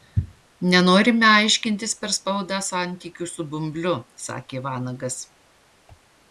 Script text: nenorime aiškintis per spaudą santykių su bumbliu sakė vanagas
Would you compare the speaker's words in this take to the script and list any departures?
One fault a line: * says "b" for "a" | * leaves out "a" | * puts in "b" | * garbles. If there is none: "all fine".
all fine